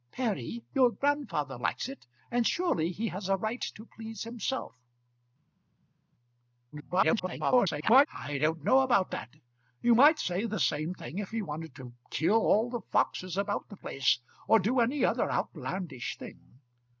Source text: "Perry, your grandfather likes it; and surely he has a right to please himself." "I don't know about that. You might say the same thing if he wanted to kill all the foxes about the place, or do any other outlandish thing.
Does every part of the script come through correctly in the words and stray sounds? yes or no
no